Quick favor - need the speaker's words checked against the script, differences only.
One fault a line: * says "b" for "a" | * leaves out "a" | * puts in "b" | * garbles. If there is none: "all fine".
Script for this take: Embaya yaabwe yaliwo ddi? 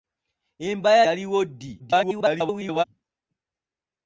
* leaves out "yaabwe"
* garbles